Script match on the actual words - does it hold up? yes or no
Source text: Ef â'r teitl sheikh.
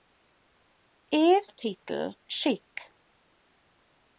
yes